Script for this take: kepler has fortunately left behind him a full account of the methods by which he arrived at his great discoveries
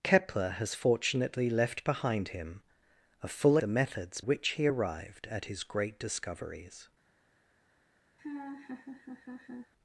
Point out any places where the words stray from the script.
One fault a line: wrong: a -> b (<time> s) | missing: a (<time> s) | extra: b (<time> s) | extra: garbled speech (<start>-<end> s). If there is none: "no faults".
missing: account of (3.6 s)
missing: by (4.2 s)